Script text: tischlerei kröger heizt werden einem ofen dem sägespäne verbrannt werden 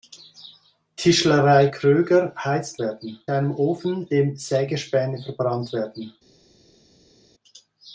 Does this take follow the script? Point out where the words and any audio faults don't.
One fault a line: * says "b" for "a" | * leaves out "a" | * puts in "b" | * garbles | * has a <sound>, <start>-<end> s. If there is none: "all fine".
all fine